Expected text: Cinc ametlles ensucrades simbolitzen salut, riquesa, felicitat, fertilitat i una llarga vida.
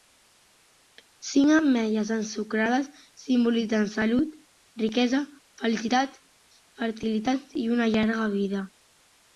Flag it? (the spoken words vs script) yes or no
no